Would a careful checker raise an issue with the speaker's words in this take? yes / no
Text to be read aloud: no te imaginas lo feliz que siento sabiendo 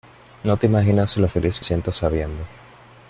no